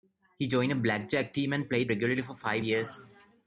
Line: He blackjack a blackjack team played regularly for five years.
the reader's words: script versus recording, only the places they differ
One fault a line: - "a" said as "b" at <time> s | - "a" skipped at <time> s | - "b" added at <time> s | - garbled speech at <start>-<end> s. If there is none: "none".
- "blackjack" said as "joined" at 0.5 s
- "and" added at 1.5 s